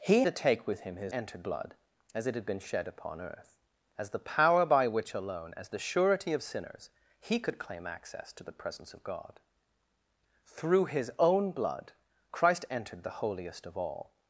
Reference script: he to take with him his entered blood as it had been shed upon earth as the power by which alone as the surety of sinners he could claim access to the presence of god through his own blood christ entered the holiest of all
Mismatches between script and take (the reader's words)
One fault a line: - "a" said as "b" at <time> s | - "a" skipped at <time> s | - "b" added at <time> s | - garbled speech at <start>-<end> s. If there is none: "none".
none